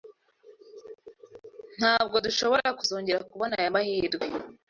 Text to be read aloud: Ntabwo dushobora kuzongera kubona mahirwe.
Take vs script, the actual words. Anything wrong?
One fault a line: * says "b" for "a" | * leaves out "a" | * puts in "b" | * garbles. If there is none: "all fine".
* puts in "aya"